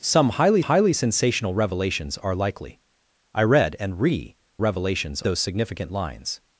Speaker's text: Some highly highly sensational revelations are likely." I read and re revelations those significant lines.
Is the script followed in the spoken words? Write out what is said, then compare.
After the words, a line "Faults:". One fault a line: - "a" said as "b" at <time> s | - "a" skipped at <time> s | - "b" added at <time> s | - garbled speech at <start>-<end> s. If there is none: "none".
Some highly highly sensational revelations are likely." I read and re revelations those significant lines.
Faults:
none